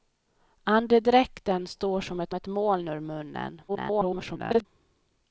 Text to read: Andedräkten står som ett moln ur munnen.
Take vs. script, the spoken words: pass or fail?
fail